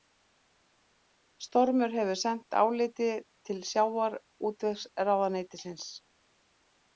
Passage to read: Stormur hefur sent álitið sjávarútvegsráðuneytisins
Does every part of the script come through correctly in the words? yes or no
no